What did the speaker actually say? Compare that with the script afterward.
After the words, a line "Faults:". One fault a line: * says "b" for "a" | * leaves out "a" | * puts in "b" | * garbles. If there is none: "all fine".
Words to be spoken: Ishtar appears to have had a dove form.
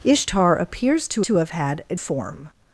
Ishtar appears to to have had a form.
Faults:
* puts in "to"
* leaves out "dove"